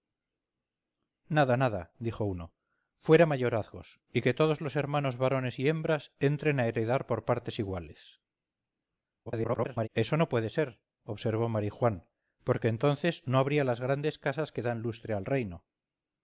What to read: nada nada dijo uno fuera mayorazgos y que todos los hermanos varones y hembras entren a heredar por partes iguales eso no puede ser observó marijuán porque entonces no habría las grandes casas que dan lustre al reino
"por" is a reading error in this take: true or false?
false